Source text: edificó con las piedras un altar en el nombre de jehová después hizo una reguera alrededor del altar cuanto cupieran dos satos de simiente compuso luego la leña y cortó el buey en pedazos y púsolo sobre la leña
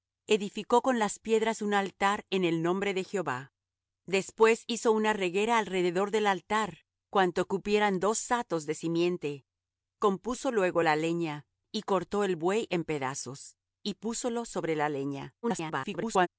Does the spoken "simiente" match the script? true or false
true